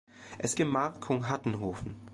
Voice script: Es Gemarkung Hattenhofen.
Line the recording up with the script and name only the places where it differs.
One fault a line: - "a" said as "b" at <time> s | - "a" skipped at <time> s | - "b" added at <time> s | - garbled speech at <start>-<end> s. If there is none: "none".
none